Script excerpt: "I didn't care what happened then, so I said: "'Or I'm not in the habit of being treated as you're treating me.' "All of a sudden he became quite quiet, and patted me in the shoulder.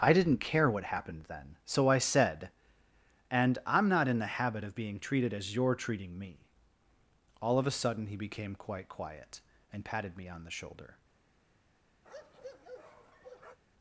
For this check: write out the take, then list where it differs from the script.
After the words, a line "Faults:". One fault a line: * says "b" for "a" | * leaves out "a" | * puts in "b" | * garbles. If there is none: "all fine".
"I didn't care what happened then, so I said: "'And I'm not in the habit of being treated as you're treating me.' "All of a sudden he became quite quiet, and patted me on the shoulder.
Faults:
* says "And" for "Or"
* says "on" for "in"